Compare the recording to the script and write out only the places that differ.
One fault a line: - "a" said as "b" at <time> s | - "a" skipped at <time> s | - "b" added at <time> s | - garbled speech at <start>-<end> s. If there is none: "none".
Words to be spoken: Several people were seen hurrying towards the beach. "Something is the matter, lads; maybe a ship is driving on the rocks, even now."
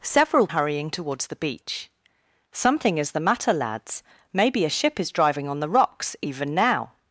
- "people were seen" skipped at 0.5 s